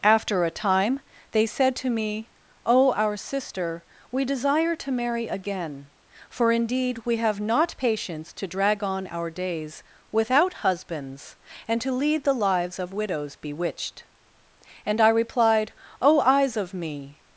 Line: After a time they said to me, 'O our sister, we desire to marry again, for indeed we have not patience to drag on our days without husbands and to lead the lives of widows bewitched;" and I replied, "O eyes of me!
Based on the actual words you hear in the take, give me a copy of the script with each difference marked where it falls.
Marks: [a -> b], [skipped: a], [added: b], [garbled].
After a time they said to me, 'O our sister, we desire to marry again, for indeed we have not patience to drag on our days without husbands and to lead the lives of widows bewitched;" and I replied, "O eyes of me!